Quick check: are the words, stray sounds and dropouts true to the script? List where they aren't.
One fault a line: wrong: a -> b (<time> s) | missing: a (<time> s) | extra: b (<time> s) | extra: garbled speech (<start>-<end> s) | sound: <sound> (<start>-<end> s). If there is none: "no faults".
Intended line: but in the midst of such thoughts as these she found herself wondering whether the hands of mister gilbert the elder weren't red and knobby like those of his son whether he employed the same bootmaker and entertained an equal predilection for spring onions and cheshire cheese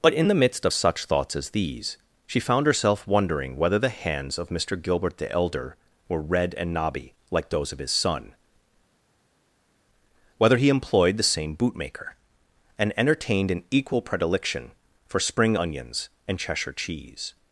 wrong: weren't -> were (6.1 s)